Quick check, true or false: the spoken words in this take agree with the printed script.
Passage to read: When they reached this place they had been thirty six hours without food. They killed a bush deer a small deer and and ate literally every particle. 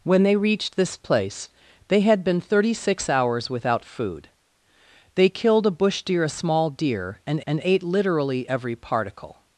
true